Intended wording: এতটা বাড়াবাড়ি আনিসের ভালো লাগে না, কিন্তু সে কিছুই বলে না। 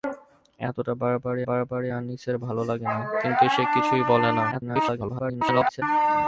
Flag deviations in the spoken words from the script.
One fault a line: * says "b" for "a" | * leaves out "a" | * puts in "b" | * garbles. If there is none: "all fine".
* puts in "বাড়াবাড়ি"
* garbles